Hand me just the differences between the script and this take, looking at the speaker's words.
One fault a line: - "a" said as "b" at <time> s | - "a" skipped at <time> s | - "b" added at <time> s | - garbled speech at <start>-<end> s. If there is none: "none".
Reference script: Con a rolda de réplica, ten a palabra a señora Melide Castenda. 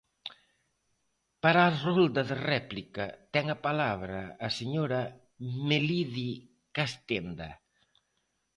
- "Con" said as "Para" at 1.4 s